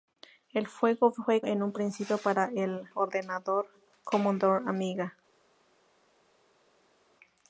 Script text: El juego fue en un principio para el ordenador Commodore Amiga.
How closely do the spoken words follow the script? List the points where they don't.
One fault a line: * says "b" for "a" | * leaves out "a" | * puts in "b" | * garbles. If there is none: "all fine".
all fine